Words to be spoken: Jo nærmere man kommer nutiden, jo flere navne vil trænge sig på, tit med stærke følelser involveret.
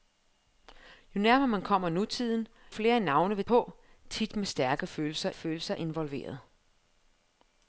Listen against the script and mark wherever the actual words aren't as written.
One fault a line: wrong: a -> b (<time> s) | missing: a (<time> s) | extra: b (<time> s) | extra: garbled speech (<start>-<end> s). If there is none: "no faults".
missing: jo (2.5 s)
missing: trænge sig (3.4 s)
extra: følelser (5.3 s)